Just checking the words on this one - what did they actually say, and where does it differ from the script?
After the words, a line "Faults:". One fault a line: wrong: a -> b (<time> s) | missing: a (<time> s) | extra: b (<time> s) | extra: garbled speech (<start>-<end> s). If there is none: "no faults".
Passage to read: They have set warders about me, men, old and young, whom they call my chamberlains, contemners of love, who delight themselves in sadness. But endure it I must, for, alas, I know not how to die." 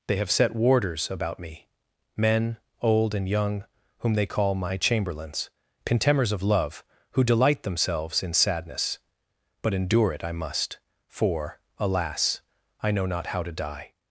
They have set warders about me, men, old and young, whom they call my chamberlains, contemners of love, who delight themselves in sadness. But endure it I must, for, alas, I know not how to die."
Faults:
no faults